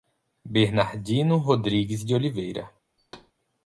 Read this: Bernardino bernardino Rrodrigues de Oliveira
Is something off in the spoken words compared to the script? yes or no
yes